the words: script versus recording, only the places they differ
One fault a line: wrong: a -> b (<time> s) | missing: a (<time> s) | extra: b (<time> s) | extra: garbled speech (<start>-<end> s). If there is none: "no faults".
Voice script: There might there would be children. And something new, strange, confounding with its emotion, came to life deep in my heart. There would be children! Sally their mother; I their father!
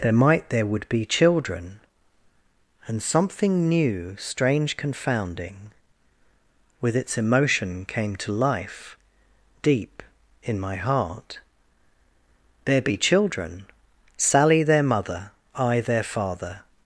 missing: would (12.8 s)